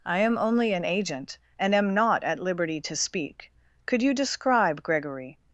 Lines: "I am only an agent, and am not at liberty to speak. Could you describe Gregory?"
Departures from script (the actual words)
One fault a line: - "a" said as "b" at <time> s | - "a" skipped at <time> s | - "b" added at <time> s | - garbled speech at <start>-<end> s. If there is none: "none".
none